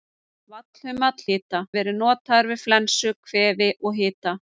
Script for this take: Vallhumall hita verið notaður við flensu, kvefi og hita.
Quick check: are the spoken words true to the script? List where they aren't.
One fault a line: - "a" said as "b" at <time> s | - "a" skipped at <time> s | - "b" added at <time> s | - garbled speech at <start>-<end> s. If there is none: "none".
none